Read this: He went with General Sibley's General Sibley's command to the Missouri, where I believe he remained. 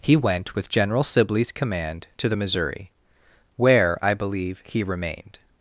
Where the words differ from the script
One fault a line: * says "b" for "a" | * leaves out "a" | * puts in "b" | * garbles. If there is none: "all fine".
* leaves out "General Sibley's"